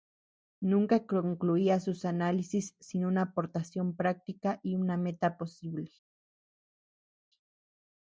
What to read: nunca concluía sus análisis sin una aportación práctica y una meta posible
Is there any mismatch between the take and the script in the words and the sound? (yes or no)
no